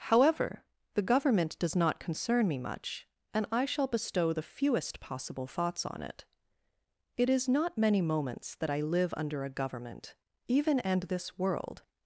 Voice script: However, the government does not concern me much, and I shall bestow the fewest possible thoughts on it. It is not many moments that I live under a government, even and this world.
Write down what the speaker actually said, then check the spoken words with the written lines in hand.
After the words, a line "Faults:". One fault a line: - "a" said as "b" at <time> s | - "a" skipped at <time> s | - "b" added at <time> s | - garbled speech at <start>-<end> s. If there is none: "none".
However, the government does not concern me much, and I shall bestow the fewest possible thoughts on it. It is not many moments that I live under a government, even and this world.
Faults:
none